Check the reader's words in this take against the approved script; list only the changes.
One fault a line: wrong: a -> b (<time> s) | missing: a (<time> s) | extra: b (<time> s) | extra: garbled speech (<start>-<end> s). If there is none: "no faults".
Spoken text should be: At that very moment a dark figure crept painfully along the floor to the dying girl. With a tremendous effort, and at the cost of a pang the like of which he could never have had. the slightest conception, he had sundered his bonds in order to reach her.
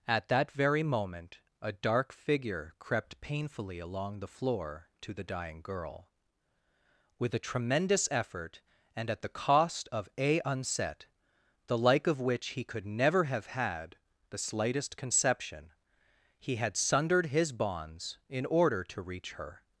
wrong: pang -> unset (10.4 s)